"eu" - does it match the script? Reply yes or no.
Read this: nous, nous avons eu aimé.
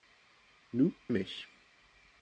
no